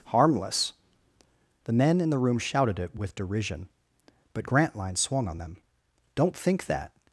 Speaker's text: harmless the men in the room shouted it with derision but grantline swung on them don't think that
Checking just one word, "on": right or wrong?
right